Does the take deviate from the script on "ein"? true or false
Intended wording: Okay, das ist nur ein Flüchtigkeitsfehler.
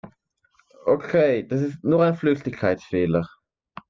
false